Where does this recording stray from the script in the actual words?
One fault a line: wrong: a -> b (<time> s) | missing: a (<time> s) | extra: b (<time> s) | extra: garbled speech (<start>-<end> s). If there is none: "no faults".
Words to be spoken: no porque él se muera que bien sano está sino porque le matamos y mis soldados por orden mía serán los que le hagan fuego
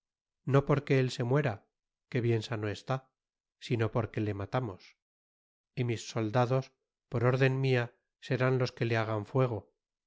no faults